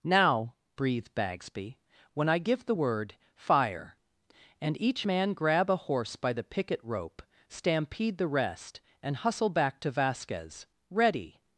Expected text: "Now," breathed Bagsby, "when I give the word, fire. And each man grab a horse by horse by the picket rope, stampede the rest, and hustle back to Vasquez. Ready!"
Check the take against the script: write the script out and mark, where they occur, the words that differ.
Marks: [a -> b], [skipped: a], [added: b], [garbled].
"Now," breathed Bagsby, "when I give the word, fire. And each man grab a horse by [skipped: horse by] the picket rope, stampede the rest, and hustle back to Vasquez. Ready!"